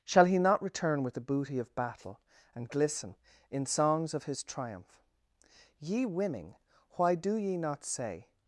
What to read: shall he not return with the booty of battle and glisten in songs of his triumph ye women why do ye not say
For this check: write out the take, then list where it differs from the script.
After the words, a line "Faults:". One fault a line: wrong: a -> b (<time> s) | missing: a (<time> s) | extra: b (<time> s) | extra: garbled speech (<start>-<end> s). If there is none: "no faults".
shall he not return with the booty of battle and glisten in songs of his triumph ye women why do ye not say
Faults:
no faults